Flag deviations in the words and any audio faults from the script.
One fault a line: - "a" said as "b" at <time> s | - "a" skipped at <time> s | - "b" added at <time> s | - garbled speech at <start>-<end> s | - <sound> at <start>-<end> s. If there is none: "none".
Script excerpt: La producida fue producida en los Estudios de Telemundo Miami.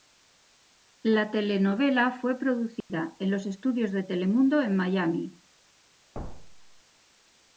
- "producida" said as "telenovela" at 1.3 s
- dropout at 2.8-2.9 s
- "en" added at 4.6 s
- thud at 6.1-6.8 s